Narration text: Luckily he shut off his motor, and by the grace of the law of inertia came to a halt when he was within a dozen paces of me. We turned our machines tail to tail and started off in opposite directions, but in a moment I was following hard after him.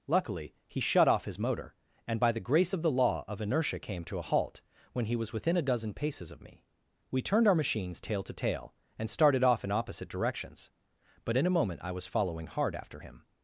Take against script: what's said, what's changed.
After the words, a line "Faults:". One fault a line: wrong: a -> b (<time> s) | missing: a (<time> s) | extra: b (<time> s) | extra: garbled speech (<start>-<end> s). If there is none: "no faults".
Luckily he shut off his motor, and by the grace of the law of inertia came to a halt when he was within a dozen paces of me. We turned our machines tail to tail and started off in opposite directions, but in a moment I was following hard after him.
Faults:
no faults